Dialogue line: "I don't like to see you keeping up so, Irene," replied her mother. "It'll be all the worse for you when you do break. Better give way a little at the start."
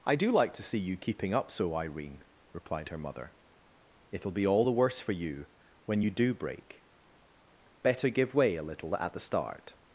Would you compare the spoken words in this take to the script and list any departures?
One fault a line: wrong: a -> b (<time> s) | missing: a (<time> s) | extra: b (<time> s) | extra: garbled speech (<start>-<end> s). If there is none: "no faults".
wrong: don't -> do (0.1 s)